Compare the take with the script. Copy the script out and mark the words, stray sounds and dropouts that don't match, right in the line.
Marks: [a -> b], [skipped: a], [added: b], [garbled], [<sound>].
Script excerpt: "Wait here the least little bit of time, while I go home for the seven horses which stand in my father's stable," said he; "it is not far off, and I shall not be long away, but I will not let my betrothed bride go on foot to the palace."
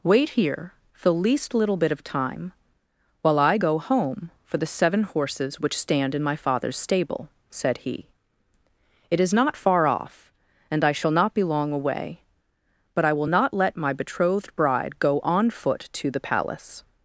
"Wait here the least little bit of time, while I go home for the seven horses which stand in my father's stable," said he; "it is not far off, and I shall not be long away, but I will not let my betrothed bride go on foot to the palace."